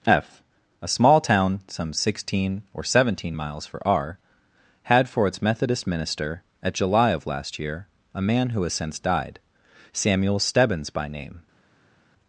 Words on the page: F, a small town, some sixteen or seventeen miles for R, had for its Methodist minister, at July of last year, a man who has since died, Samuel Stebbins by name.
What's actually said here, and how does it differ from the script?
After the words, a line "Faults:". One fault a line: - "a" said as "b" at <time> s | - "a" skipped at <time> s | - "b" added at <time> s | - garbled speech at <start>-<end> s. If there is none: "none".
F, a small town, some sixteen or seventeen miles for R, had for its Methodist minister, at July of last year, a man who has since died, Samuel Stebbins by name.
Faults:
none